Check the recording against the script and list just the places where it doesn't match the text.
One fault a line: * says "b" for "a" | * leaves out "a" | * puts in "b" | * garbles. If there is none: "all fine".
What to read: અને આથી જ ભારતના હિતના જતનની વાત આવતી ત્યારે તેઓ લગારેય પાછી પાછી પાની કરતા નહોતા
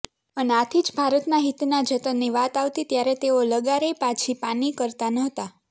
* leaves out "પાછી"